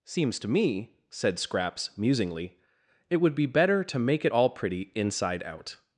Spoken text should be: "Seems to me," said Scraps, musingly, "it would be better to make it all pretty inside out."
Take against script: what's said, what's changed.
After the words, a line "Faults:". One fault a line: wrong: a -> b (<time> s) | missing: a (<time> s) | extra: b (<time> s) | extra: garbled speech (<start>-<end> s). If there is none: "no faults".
"Seems to me," said Scraps, musingly, "it would be better to make it all pretty inside out."
Faults:
no faults